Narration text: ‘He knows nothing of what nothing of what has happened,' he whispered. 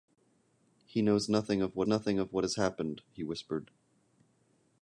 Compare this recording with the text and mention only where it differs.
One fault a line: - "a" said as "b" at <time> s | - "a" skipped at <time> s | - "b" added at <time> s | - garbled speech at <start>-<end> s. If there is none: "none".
none